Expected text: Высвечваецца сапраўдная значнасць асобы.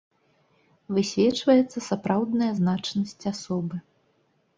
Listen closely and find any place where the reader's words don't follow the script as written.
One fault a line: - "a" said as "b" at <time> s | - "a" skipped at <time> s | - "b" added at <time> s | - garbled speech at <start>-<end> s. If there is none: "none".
none